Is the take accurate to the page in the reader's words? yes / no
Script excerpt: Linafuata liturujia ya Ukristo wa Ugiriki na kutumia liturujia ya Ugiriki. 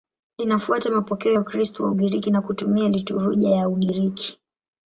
no